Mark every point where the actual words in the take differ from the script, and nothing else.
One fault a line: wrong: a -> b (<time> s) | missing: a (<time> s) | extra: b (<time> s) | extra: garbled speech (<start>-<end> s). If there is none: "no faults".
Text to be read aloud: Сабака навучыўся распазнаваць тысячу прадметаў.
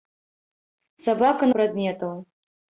missing: навучыўся распазнаваць тысячу (1.5 s)